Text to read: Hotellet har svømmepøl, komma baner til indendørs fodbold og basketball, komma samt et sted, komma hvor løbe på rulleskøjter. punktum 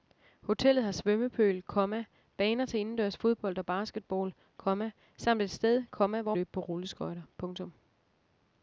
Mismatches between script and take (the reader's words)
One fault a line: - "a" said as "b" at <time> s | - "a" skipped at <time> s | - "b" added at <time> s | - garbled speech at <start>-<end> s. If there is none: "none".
none